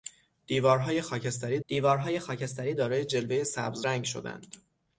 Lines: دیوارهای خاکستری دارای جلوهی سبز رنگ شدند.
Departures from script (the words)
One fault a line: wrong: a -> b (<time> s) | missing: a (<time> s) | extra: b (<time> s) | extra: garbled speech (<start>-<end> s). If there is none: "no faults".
extra: دیوارهای خاکستری (1.7 s)